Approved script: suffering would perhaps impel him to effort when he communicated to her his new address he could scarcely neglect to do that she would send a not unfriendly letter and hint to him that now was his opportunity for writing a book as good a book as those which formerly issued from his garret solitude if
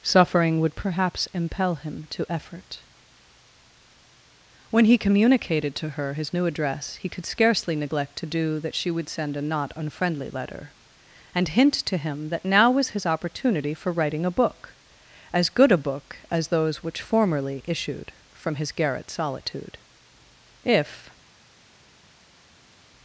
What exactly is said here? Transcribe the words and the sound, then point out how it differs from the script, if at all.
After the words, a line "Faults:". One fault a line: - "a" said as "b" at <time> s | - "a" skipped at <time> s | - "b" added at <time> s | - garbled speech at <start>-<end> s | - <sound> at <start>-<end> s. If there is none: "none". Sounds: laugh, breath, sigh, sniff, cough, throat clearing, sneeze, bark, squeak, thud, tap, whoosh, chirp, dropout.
suffering would perhaps impel him to effort when he communicated to her his new address he could scarcely neglect to do that she would send a not unfriendly letter and hint to him that now was his opportunity for writing a book as good a book as those which formerly issued from his garret solitude if
Faults:
none